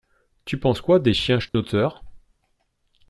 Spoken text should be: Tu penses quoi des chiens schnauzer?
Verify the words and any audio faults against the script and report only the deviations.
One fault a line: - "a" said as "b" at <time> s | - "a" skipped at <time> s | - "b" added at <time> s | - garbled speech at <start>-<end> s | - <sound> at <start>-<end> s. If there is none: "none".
- dropout at 1.5-1.5 s